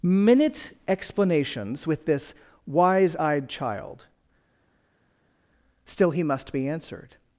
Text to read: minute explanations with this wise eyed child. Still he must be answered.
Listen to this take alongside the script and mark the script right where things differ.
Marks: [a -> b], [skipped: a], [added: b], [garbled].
minute explanations with this wise eyed child. Still he must be answered.